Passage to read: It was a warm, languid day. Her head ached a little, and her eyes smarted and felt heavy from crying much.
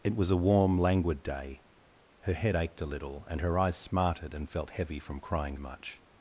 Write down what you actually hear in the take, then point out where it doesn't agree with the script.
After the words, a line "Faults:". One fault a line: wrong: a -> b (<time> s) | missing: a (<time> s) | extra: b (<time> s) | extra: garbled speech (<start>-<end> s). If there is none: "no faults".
It was a warm, languid day. Her head ached a little, and her eyes smarted and felt heavy from crying much.
Faults:
no faults